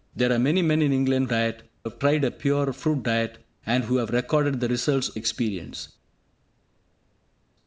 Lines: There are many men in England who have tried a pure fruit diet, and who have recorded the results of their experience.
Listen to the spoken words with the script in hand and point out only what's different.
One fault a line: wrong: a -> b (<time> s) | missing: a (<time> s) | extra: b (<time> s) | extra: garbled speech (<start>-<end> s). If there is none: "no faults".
wrong: who -> diet (1.3 s)
missing: of their (5.1 s)